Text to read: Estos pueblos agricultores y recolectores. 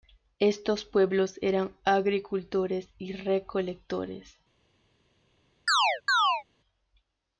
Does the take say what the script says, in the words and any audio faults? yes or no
no